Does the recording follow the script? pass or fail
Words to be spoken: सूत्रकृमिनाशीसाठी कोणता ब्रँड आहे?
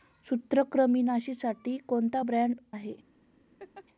pass